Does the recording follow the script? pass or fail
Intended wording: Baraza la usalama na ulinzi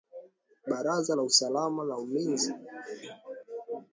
pass